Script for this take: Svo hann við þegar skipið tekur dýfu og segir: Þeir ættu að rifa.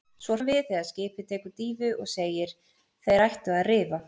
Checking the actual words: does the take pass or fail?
pass